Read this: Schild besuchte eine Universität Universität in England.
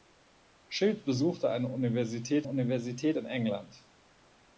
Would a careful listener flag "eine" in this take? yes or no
no